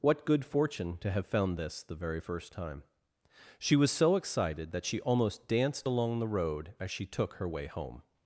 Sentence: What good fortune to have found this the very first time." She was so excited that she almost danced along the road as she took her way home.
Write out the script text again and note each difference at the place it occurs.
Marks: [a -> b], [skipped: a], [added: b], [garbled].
What good fortune to have found this the very first time." She was so excited that she almost danced along the road as she took her way home.